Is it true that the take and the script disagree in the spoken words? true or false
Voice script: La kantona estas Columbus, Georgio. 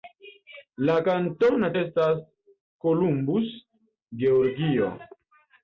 false